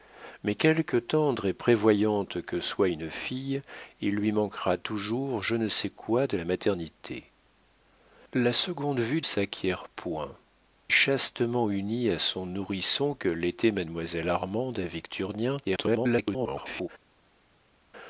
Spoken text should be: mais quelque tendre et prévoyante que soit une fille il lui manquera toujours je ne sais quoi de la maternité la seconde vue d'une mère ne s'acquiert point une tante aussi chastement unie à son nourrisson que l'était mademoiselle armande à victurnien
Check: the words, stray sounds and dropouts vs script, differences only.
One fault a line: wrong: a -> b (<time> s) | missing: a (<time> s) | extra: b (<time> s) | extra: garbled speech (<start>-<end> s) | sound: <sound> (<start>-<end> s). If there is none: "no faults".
missing: d'une mère ne (9.2 s)
missing: une tante aussi (10.3 s)
extra: garbled speech (15.6-16.9 s)